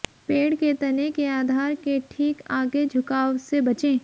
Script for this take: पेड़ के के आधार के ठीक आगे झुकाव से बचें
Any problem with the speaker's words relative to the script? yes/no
yes